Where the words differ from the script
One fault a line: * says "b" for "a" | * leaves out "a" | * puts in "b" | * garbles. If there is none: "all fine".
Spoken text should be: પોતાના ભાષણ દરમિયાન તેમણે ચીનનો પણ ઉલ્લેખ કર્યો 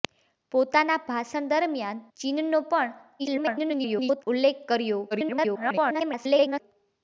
* leaves out "તેમણે"
* garbles
* garbles